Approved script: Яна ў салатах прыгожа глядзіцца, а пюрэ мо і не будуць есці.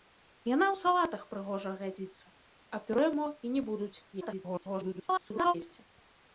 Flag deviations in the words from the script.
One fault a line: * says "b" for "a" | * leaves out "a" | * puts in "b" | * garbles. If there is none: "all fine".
* garbles